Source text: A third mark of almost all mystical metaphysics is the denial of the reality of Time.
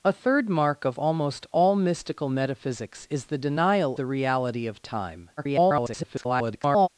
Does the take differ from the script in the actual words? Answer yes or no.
yes